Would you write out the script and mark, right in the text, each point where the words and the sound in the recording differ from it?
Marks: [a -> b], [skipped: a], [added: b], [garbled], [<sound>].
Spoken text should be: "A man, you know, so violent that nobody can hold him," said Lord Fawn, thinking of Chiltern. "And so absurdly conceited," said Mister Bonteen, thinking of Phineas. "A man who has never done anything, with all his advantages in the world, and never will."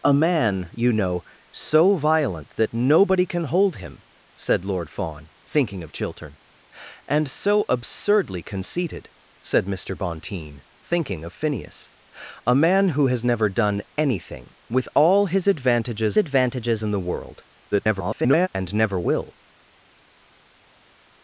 "A man, you know, so violent that nobody can hold him," said Lord Fawn, thinking of Chiltern. "And so absurdly conceited," said Mister Bonteen, thinking of Phineas. "A man who has never done anything, with all his advantages [added: advantages] in the world, [garbled] and never will."